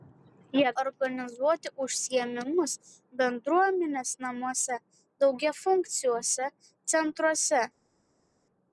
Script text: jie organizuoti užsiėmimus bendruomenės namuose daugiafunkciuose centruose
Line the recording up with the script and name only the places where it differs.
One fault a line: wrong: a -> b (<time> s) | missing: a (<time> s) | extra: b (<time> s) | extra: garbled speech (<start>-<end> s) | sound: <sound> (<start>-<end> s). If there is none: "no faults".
no faults